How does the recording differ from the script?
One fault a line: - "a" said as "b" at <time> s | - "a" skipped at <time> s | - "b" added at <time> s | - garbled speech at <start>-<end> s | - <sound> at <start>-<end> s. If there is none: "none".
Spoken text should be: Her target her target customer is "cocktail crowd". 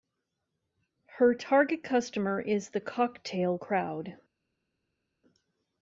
- "her target" skipped at 1.8 s
- "the" added at 2.7 s